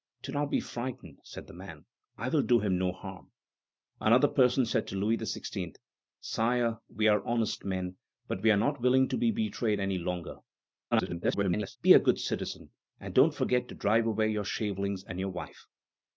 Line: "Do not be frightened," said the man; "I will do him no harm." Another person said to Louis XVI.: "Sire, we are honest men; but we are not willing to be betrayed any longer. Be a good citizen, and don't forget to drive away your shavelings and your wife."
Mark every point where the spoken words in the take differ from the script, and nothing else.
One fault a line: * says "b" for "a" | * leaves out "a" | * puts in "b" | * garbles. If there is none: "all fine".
* garbles